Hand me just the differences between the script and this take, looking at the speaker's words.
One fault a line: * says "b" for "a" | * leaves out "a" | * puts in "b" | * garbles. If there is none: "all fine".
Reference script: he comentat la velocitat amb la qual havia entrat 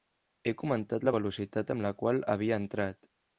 all fine